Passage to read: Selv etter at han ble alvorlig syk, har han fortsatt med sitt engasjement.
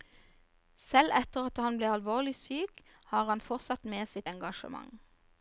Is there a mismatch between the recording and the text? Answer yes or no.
no